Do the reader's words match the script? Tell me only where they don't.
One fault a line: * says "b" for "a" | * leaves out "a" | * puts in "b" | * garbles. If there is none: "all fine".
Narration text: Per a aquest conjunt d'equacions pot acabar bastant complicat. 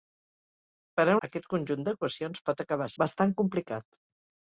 all fine